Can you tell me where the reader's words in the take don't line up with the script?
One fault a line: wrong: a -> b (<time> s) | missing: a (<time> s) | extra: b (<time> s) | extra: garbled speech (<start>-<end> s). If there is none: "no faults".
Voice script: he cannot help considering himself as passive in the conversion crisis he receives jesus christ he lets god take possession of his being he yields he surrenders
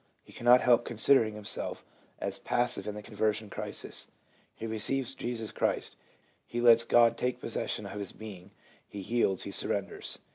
no faults